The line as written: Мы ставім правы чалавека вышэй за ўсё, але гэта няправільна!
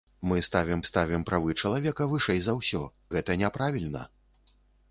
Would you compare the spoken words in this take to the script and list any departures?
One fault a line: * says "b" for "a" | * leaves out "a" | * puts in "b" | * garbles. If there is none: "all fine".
* puts in "ставім"
* leaves out "але"